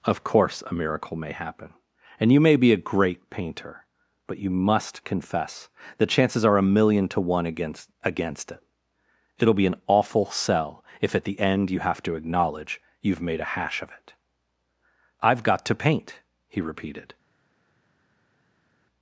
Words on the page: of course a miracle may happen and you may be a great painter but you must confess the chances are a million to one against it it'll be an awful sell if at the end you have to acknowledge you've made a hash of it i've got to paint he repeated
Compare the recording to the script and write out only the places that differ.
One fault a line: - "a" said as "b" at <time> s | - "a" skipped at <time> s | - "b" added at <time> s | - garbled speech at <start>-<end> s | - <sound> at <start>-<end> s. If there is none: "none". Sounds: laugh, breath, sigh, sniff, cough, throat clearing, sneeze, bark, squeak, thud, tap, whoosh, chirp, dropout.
- "against" added at 8.0 s